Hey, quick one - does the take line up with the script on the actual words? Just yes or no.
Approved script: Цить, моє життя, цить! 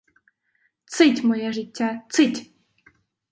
yes